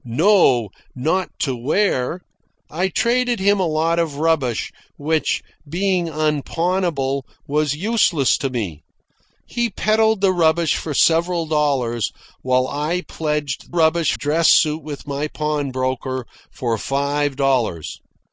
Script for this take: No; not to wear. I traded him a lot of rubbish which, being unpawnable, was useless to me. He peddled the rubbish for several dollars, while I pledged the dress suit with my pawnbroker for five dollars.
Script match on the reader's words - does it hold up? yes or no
no